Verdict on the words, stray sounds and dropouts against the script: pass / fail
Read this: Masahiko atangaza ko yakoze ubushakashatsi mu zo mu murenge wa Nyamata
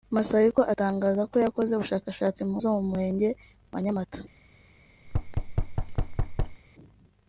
fail